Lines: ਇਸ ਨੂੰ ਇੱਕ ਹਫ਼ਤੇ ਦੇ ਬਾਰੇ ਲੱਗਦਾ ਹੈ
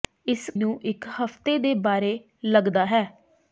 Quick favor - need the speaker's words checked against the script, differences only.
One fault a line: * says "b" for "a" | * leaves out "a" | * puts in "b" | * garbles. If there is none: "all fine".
all fine